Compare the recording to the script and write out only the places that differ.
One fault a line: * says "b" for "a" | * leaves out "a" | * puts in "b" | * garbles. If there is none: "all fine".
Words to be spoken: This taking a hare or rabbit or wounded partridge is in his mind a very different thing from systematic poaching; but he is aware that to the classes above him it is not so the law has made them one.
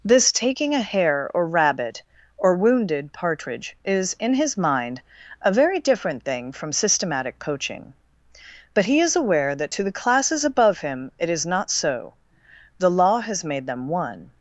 all fine